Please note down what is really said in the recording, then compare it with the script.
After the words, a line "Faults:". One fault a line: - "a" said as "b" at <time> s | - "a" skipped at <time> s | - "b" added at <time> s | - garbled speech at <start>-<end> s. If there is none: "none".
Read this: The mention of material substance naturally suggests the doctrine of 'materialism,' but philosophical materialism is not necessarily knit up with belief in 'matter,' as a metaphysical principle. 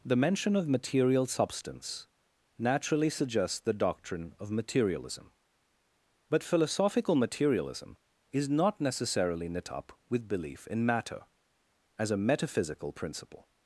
The mention of material substance naturally suggests the doctrine of 'materialism,' but philosophical materialism is not necessarily knit up with belief in 'matter,' as a metaphysical principle.
Faults:
none